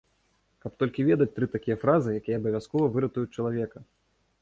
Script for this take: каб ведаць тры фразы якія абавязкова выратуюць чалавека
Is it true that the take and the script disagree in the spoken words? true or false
true